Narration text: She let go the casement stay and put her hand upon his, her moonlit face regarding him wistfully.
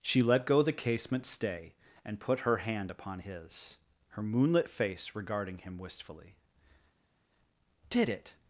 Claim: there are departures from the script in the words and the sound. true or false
true